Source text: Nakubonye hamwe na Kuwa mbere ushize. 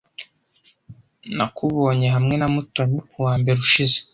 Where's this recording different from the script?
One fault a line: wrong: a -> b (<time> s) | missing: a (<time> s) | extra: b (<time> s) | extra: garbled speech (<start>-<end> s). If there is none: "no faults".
extra: Mutoni (2.5 s)